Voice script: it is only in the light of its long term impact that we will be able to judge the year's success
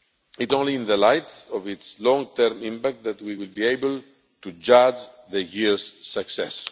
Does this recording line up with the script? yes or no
no